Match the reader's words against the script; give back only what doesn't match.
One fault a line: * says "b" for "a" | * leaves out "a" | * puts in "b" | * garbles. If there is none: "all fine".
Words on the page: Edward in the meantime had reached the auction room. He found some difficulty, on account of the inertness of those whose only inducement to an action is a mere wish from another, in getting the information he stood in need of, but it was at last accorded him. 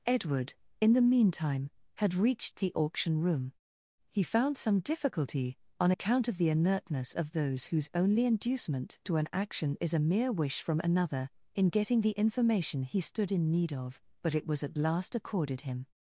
all fine